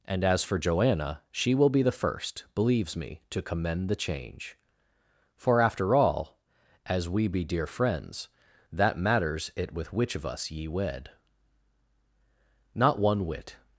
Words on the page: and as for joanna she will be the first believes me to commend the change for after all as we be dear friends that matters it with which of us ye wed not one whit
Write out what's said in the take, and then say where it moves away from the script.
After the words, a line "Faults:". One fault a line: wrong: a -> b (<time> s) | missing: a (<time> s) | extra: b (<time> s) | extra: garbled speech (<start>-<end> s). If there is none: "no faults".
and as for joanna she will be the first believes me to commend the change for after all as we be dear friends that matters it with which of us ye wed not one whit
Faults:
no faults